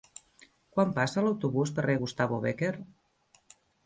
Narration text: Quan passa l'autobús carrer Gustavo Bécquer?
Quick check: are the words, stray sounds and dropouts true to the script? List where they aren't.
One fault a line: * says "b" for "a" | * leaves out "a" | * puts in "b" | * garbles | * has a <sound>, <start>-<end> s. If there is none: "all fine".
all fine